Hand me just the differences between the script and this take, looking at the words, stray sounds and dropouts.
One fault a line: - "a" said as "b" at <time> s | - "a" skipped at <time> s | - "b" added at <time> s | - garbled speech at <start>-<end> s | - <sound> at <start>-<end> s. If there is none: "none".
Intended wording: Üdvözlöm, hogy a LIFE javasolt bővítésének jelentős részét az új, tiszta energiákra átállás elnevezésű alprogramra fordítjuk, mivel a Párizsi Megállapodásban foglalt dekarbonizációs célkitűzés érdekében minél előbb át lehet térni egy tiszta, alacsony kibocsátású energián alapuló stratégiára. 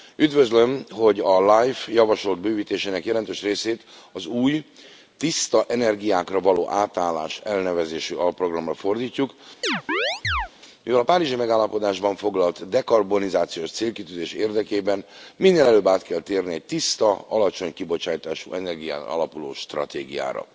- "való" added at 6.4 s
- chirp at 9.6-10.5 s
- "lehet" said as "kell" at 16.0 s